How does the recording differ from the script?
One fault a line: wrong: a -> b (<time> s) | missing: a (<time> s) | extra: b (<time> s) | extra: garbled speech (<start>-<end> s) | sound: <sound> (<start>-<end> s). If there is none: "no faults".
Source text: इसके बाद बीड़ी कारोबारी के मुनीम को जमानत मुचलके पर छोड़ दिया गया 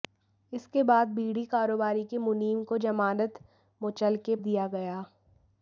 missing: पर छोड़ (4.3 s)